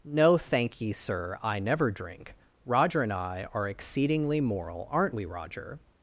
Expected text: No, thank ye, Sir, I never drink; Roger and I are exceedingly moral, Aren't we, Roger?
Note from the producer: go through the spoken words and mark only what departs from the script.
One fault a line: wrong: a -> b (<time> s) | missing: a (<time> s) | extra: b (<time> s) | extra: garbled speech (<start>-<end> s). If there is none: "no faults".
no faults